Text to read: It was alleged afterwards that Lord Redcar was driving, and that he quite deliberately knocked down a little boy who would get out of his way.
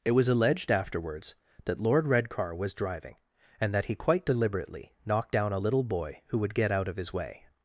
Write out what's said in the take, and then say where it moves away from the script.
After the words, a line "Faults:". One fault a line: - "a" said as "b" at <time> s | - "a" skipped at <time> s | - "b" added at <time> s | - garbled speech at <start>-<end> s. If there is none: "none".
It was alleged afterwards that Lord Redcar was driving, and that he quite deliberately knocked down a little boy who would get out of his way.
Faults:
none